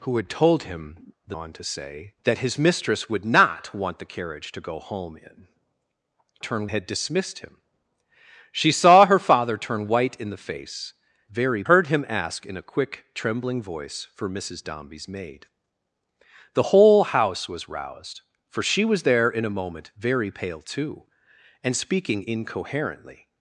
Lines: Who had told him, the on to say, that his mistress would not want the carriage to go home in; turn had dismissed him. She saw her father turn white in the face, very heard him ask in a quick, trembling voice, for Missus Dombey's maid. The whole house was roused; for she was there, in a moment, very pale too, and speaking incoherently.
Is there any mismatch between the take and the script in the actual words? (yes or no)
no